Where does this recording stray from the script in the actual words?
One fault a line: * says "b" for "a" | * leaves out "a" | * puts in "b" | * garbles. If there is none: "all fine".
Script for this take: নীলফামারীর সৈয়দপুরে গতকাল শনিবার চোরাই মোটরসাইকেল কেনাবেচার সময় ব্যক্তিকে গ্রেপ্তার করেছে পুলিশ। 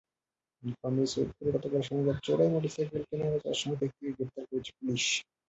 all fine